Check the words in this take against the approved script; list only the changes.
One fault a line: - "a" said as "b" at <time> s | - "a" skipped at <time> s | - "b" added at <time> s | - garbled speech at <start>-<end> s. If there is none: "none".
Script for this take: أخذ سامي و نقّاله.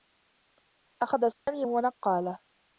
none